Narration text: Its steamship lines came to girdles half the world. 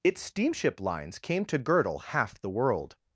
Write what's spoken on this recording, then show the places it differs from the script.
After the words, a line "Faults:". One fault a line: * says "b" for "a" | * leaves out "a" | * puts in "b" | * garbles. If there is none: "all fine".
Its steamship lines came to girdle half the world.
Faults:
* says "girdle" for "girdles"